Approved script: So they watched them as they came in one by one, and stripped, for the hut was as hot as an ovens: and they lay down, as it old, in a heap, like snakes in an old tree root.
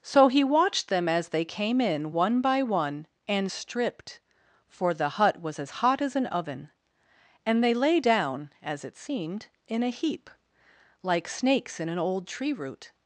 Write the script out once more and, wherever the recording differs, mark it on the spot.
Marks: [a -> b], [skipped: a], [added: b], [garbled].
So [they -> he] watched them as they came in one by one, and stripped, for the hut was as hot as an [ovens: -> oven] and they lay down, as it [old, -> seemed] in a heap, like snakes in an old tree root.